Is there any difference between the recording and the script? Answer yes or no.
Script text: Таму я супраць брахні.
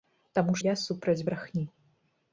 no